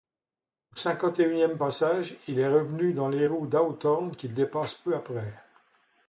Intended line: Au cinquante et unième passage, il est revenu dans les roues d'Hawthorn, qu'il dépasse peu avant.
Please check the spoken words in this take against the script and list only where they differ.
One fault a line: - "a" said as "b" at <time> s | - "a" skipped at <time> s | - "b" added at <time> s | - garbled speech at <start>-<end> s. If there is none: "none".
- "avant" said as "après" at 4.9 s